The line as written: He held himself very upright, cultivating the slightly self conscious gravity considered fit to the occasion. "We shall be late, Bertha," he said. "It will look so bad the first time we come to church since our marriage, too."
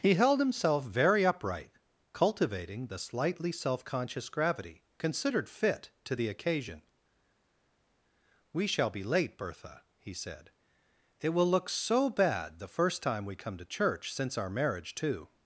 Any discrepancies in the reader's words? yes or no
no